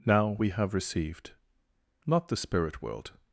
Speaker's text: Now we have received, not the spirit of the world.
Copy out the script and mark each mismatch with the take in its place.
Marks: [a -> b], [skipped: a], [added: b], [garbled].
Now we have received, not the spirit [skipped: of the] world.